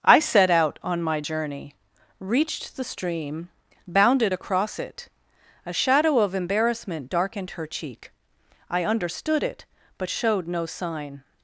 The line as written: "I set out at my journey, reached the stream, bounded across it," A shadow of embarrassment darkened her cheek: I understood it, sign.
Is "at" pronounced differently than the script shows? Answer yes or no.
yes